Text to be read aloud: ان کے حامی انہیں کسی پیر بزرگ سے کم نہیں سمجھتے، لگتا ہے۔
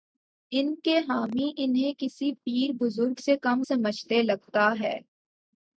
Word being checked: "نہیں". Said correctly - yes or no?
no